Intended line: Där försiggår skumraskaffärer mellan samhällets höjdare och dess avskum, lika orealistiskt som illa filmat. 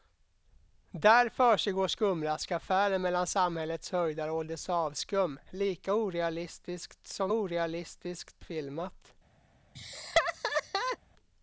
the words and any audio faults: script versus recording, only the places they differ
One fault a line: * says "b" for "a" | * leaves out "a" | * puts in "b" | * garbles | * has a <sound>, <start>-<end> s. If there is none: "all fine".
* says "orealistiskt" for "illa"
* has a laugh, 9.7-11.0 s